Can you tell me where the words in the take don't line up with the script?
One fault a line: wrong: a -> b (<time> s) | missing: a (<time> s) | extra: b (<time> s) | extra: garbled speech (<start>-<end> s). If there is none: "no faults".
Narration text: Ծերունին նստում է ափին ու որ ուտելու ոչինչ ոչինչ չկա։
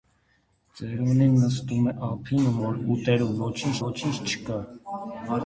no faults